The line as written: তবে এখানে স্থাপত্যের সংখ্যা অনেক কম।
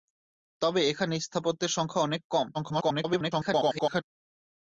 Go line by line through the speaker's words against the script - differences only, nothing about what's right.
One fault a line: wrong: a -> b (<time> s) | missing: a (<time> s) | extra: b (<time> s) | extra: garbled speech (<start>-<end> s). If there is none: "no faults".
extra: garbled speech (2.5-4.0 s)